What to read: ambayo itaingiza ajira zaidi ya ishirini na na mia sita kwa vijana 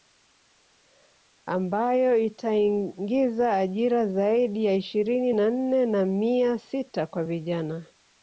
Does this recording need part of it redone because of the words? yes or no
yes